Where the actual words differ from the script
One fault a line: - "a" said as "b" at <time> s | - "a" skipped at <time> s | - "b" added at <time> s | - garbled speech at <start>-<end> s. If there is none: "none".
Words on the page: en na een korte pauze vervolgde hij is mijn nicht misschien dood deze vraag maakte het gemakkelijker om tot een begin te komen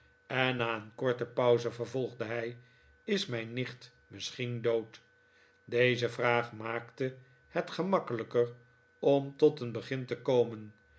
none